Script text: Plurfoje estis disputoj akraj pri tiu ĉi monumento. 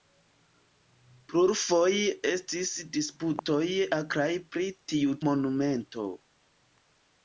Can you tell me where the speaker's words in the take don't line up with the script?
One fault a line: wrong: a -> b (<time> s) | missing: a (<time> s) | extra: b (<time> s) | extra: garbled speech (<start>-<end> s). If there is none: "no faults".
missing: ĉi (5.2 s)